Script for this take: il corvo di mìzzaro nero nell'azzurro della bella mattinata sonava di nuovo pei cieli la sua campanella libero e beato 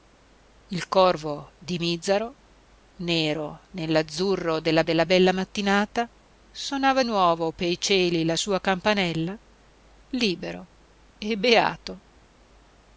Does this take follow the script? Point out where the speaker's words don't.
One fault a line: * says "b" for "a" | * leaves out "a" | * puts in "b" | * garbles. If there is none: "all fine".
* puts in "della"
* leaves out "di"